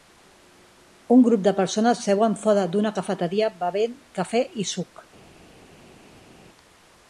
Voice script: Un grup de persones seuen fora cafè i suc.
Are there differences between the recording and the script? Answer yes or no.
yes